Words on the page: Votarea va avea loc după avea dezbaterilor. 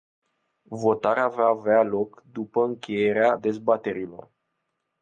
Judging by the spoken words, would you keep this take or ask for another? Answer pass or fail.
fail